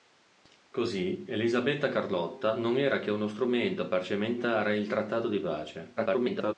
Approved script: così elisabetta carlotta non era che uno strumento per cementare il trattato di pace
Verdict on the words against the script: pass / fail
fail